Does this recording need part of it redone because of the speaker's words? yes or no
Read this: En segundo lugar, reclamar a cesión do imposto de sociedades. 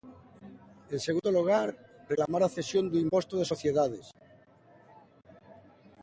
no